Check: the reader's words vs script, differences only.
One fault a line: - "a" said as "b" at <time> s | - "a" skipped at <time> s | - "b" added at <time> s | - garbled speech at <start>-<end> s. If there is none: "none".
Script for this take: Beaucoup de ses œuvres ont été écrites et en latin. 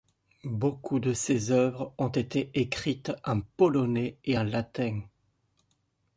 - "en polonais" added at 3.3 s